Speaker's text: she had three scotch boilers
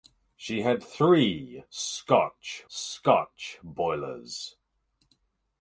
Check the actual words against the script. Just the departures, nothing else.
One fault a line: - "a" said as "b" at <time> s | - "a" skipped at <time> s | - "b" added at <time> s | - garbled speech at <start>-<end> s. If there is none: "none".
- "scotch" added at 2.7 s